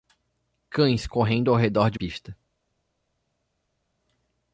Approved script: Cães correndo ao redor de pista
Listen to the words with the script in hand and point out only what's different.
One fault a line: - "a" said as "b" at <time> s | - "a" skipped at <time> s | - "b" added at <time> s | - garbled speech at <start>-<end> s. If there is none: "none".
none